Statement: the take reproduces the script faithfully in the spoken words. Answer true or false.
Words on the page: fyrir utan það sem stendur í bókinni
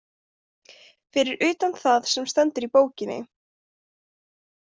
true